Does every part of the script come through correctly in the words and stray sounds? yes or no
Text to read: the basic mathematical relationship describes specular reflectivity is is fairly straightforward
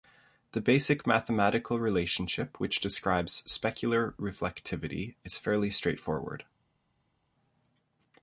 no